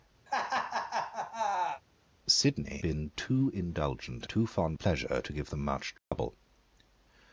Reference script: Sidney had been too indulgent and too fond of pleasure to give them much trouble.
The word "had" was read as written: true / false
false